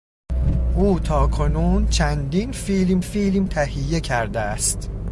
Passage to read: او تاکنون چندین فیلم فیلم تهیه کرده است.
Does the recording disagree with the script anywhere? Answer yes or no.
no